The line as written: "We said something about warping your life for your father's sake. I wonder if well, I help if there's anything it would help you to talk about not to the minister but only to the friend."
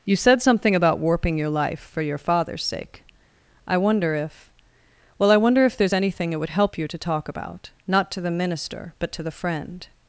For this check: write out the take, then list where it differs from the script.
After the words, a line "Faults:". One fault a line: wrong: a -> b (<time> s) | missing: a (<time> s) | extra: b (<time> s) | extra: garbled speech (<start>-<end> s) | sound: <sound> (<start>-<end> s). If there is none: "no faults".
"You said something about warping your life for your father's sake. I wonder if well, I wonder if there's anything it would help you to talk about not to the minister but to the friend."
Faults:
wrong: We -> You (0.0 s)
wrong: help -> wonder (5.4 s)
missing: only (9.1 s)